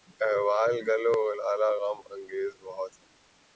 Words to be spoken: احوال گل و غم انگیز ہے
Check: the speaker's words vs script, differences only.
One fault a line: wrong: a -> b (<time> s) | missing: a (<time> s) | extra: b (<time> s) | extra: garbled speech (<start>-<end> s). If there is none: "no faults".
extra: لالہ (1.4 s)
extra: بہت (2.6 s)